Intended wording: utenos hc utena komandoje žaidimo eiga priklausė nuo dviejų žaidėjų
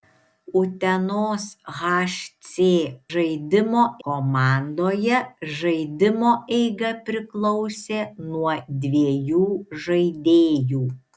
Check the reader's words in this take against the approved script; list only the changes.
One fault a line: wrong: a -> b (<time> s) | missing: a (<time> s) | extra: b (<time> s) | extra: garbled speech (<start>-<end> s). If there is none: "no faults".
wrong: utena -> žaidimo (3.1 s)